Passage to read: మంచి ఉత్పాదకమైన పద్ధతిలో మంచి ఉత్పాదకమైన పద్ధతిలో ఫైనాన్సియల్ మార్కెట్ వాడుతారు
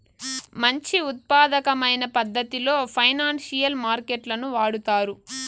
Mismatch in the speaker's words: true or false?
true